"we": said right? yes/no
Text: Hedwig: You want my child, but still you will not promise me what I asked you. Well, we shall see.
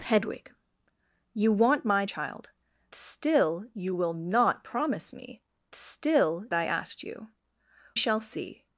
no